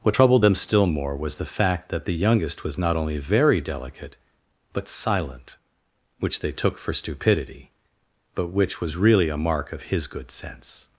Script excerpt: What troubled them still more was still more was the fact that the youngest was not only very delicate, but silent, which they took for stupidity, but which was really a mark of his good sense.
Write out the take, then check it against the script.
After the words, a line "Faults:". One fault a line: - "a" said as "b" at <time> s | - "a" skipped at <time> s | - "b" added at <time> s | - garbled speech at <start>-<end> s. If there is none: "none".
What troubled them still more was the fact that the youngest was not only very delicate, but silent, which they took for stupidity, but which was really a mark of his good sense.
Faults:
- "still more was" skipped at 1.4 s